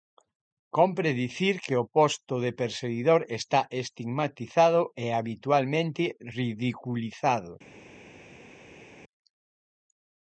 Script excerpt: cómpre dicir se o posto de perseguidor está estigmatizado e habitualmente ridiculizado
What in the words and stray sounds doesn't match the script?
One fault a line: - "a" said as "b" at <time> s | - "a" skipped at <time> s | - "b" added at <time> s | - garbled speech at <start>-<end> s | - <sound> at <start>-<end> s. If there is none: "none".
- "se" said as "que" at 1.6 s